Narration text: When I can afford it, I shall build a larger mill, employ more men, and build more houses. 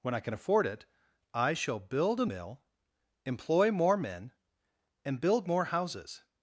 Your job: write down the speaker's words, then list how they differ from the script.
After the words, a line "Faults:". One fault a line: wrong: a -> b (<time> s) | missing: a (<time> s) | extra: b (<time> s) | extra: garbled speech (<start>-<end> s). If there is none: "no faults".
When I can afford it, I shall build a mill, employ more men, and build more houses.
Faults:
missing: larger (2.2 s)